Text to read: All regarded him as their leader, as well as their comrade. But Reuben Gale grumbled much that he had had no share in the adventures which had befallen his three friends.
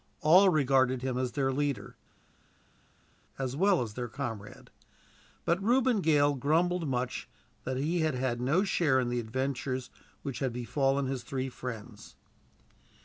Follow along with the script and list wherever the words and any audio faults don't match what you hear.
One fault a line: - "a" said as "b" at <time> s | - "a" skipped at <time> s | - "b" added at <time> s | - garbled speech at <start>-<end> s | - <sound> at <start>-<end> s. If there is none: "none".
none